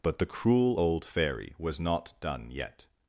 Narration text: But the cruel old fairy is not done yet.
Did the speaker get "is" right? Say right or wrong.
wrong